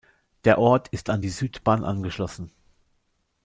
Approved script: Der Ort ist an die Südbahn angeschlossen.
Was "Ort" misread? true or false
false